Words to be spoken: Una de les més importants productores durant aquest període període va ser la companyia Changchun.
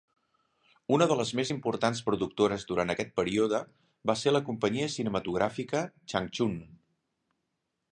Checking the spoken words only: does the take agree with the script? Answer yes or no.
no